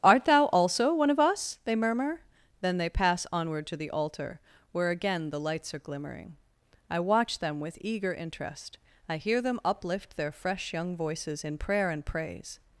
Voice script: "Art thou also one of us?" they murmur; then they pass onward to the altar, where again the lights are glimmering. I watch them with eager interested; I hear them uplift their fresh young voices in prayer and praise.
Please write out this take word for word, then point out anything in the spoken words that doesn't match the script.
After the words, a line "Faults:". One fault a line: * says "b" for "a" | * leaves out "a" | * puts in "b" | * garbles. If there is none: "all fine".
"Art thou also one of us?" they murmur; then they pass onward to the altar, where again the lights are glimmering. I watch them with eager interest; I hear them uplift their fresh young voices in prayer and praise.
Faults:
* says "interest" for "interested"